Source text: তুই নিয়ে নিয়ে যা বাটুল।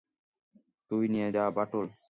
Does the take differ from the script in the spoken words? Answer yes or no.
yes